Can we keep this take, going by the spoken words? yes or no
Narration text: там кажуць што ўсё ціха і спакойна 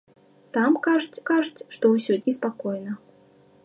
no